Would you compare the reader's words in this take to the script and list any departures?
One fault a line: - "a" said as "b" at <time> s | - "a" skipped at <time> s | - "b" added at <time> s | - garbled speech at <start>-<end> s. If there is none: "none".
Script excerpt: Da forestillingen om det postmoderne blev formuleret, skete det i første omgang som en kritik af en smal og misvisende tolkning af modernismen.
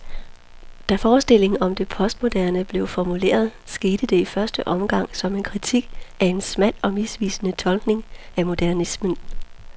none